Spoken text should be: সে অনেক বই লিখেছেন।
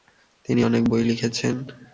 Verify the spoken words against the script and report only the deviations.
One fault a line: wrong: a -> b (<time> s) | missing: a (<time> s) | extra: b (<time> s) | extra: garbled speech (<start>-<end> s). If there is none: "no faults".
wrong: সে -> তিনি (0.5 s)